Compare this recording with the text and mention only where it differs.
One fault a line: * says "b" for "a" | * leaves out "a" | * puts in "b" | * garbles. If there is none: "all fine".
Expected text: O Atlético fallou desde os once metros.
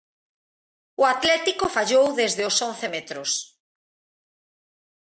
all fine